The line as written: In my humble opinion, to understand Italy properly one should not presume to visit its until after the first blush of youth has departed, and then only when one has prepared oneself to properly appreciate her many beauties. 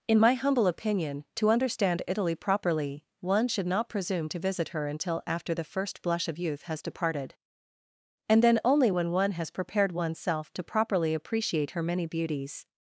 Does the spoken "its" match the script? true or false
false